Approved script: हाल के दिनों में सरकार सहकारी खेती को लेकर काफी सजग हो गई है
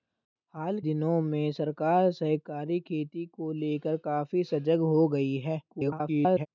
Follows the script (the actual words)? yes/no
no